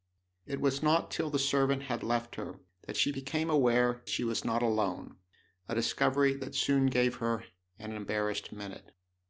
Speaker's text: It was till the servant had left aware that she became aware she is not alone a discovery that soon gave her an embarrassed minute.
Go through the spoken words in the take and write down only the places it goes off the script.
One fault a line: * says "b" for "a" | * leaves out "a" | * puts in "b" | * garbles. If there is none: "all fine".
* puts in "not"
* says "her" for "aware"
* says "was" for "is"